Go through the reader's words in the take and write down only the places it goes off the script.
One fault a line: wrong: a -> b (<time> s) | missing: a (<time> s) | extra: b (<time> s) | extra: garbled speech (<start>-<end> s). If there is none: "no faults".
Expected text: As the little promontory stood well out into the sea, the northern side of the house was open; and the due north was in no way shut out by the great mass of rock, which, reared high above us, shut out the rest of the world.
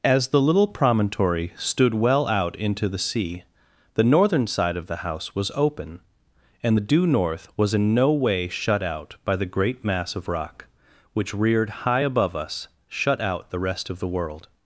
no faults